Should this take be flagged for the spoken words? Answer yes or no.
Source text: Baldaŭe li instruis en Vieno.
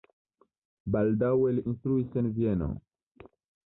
no